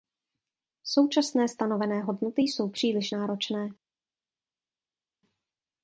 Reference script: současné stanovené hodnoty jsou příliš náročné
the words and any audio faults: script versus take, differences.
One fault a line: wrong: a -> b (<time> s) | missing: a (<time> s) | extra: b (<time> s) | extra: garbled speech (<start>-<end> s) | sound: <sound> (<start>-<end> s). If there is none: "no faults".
no faults